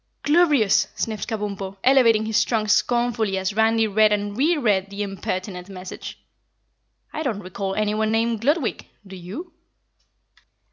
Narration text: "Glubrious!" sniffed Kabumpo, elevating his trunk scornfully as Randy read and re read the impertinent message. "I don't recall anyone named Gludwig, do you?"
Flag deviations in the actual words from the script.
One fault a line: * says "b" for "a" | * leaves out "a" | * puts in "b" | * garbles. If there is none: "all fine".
all fine